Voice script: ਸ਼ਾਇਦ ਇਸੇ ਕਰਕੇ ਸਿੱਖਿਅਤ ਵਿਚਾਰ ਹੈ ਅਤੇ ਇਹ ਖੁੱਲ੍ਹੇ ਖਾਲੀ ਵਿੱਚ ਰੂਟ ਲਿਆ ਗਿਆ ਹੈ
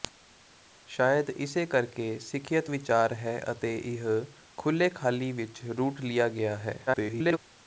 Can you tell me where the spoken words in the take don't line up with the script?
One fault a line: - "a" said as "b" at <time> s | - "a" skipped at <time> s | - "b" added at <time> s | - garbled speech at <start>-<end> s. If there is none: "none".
- garbled speech at 6.9-7.4 s